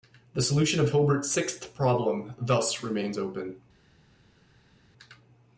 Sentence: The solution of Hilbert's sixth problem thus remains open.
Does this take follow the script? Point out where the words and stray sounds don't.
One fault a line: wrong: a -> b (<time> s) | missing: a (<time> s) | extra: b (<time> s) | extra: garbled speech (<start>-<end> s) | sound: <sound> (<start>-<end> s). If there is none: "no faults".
no faults